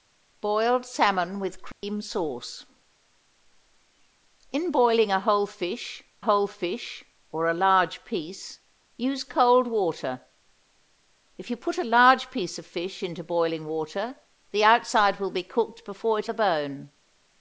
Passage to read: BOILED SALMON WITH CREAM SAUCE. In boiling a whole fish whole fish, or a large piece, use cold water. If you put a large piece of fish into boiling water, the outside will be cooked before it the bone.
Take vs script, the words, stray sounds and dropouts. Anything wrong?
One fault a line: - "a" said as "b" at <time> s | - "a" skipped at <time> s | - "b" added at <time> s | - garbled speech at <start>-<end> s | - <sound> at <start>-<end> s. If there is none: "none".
- dropout at 1.7-1.8 s